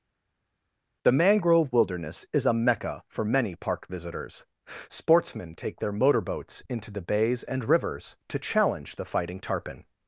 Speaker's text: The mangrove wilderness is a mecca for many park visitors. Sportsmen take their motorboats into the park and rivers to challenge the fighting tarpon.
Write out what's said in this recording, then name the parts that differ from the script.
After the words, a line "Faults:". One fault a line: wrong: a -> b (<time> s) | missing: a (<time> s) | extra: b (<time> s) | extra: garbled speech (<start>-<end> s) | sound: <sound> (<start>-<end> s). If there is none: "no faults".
The mangrove wilderness is a mecca for many park visitors. Sportsmen take their motorboats into the bays and rivers to challenge the fighting tarpon.
Faults:
wrong: park -> bays (7.0 s)